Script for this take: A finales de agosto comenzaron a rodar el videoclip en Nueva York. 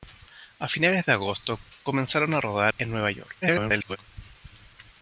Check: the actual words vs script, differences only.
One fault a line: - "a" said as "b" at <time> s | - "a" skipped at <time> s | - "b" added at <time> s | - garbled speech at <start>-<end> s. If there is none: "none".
- "el videoclip" skipped at 2.7 s
- garbled speech at 3.4-4.0 s